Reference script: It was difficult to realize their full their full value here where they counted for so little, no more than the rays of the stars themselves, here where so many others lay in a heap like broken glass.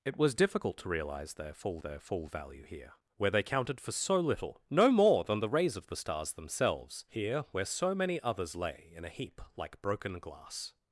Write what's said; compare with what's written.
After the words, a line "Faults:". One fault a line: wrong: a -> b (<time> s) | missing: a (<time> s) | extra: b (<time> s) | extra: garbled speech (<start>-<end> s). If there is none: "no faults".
It was difficult to realize their full their full value here where they counted for so little, no more than the rays of the stars themselves, here where so many others lay in a heap like broken glass.
Faults:
no faults